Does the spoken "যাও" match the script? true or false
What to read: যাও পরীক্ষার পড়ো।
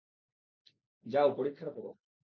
true